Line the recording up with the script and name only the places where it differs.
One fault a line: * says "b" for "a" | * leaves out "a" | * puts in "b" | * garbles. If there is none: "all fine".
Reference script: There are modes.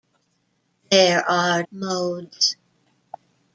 all fine